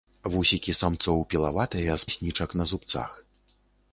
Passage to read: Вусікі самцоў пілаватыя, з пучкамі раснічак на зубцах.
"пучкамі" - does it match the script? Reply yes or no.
no